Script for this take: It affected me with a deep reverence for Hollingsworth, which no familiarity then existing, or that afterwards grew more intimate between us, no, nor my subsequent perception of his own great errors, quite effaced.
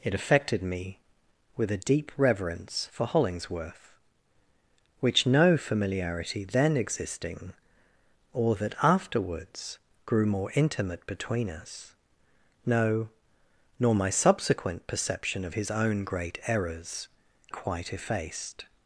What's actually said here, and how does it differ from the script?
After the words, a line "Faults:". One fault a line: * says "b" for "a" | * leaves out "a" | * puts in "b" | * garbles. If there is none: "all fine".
It affected me with a deep reverence for Hollingsworth, which no familiarity then existing, or that afterwards grew more intimate between us, no, nor my subsequent perception of his own great errors, quite effaced.
Faults:
all fine